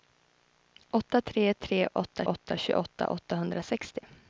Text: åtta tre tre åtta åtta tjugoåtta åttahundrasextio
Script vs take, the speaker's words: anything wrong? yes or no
no